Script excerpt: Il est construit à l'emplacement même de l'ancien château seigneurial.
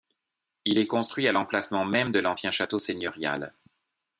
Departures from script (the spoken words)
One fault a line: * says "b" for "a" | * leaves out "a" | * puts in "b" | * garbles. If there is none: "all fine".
all fine